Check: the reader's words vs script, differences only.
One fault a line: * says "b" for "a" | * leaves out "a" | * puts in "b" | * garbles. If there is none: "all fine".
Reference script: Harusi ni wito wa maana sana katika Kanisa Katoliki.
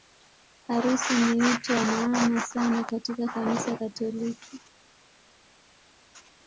all fine